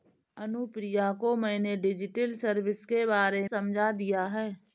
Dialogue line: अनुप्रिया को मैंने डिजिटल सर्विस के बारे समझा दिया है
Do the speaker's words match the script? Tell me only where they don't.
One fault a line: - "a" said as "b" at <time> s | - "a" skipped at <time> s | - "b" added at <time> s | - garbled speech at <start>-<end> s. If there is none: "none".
none